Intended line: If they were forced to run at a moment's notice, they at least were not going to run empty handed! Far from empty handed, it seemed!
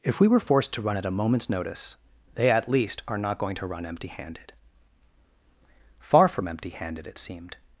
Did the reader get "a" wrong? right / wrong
right